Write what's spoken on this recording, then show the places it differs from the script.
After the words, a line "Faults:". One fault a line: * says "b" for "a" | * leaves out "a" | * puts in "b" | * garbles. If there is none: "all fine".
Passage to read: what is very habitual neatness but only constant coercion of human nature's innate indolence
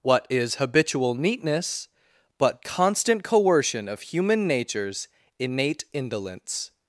what is habitual neatness but constant coercion of human nature's innate indolence
Faults:
* leaves out "very"
* leaves out "only"